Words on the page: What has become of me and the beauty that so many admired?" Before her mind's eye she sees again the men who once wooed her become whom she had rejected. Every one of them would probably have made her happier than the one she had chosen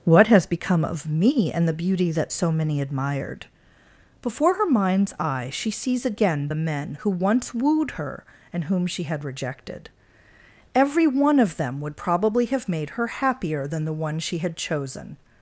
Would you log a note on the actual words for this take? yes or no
yes